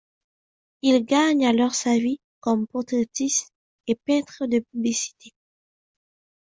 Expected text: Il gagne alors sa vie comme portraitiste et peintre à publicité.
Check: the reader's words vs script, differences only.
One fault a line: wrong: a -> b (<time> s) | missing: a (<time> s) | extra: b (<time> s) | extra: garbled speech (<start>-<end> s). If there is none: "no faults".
wrong: à -> de (4.5 s)